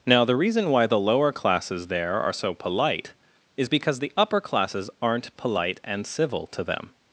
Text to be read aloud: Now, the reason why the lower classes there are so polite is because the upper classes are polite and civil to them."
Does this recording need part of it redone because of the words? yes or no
yes